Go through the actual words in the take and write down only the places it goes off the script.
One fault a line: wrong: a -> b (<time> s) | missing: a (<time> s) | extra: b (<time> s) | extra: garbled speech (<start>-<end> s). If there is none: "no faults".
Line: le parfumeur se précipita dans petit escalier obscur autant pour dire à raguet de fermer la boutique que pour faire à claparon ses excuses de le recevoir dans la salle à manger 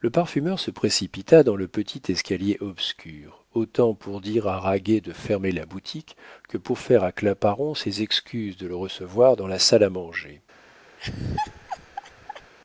extra: le (1.6 s)